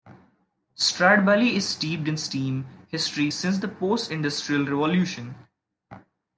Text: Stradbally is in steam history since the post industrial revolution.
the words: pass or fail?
fail